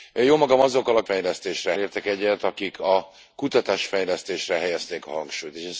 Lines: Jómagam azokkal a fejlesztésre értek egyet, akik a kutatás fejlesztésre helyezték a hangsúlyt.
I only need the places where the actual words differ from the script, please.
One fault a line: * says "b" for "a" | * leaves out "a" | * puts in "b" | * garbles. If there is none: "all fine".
all fine